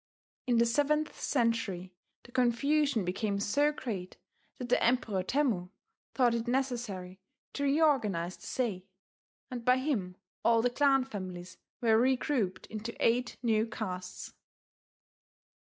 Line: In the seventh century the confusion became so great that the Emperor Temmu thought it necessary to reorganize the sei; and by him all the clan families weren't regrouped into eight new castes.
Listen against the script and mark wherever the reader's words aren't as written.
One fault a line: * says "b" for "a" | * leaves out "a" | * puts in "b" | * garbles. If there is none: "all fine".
* says "were" for "weren't"